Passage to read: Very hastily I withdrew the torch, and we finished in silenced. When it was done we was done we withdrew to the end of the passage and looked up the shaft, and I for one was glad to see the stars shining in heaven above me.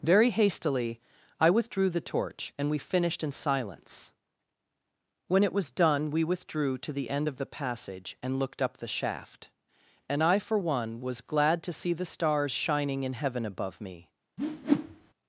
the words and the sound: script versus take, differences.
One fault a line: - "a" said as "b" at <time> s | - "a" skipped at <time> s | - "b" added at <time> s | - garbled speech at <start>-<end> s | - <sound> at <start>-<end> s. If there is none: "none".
- "silenced" said as "silence" at 3.3 s
- "was done we" skipped at 6.2 s
- whoosh at 14.4-15.1 s